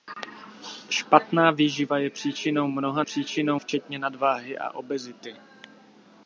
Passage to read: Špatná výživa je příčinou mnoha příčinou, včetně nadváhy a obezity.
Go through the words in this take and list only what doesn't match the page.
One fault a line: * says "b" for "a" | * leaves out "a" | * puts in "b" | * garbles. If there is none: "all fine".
all fine